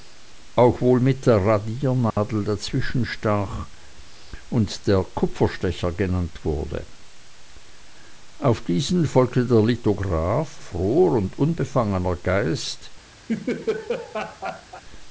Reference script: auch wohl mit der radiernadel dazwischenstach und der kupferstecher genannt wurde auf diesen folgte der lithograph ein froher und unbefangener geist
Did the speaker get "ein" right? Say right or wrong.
wrong